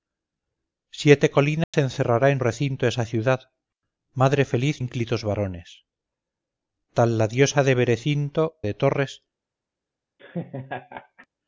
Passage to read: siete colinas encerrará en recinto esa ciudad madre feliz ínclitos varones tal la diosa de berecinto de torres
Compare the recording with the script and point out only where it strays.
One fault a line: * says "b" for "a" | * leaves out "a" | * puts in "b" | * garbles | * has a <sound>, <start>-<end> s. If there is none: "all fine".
* has a dropout, 1.6-1.7 s
* has a laugh, 10.2-11.3 s